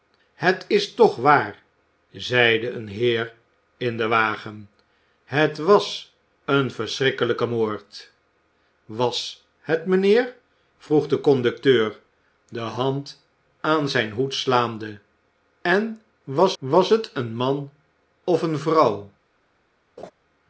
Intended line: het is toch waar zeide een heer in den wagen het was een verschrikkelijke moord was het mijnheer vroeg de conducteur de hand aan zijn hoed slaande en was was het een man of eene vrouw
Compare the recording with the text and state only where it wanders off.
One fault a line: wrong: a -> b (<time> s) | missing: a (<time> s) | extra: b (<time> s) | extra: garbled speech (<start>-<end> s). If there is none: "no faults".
no faults